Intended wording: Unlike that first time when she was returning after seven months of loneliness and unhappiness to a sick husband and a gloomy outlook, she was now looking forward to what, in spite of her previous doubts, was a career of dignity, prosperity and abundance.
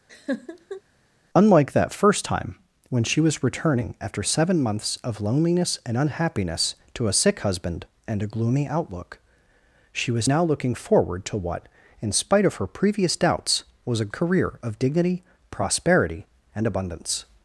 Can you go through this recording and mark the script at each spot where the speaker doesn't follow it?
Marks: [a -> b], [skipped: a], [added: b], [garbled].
Unlike that first time when she was returning after seven months of loneliness and unhappiness to a sick husband and a gloomy outlook, she was now looking forward to what, in spite of her previous doubts, was a career of dignity, prosperity and abundance.